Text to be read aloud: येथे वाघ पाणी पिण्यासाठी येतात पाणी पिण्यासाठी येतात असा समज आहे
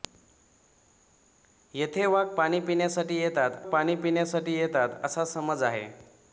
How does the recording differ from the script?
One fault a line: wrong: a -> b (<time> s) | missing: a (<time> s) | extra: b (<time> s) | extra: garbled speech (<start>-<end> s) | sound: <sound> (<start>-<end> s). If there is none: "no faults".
no faults